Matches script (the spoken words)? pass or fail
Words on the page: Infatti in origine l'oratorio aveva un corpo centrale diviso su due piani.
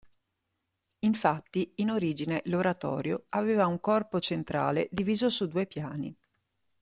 pass